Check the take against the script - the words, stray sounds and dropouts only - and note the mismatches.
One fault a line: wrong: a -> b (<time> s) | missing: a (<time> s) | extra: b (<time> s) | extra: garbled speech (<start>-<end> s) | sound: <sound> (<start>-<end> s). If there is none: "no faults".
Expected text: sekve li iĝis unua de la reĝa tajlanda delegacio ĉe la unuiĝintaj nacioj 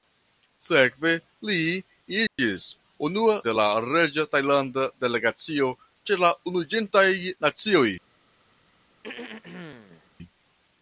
sound: dropout (2.3-2.4 s)
sound: throat clearing (9.0-10.1 s)